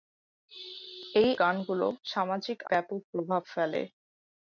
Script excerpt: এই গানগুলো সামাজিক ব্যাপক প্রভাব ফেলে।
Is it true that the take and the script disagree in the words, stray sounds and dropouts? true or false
false